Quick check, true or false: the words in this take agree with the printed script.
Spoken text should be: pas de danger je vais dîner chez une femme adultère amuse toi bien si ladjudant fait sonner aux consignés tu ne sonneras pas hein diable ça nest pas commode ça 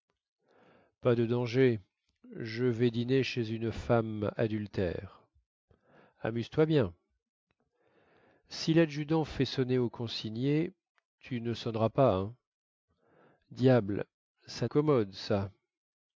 false